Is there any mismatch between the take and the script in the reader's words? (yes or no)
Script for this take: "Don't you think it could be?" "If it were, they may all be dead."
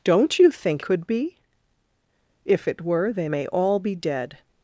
yes